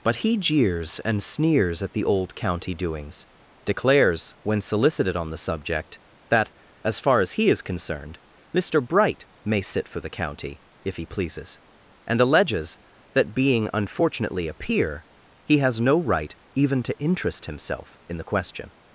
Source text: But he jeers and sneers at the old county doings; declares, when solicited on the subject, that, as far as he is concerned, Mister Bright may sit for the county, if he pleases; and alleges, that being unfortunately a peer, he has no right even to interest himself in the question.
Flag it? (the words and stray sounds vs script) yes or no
no